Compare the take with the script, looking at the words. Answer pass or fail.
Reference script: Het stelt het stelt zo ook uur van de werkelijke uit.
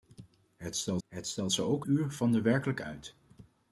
pass